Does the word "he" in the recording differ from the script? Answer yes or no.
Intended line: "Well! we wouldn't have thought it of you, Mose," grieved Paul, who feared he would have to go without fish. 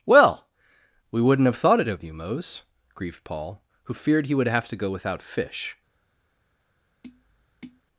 no